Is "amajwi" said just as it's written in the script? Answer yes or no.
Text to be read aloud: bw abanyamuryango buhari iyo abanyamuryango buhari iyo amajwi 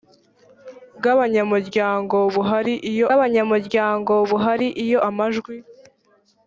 yes